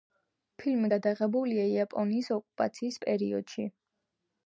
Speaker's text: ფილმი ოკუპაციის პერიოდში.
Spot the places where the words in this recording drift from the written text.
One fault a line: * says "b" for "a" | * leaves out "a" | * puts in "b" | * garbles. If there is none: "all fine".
* puts in "გადაღებულია იაპონიის"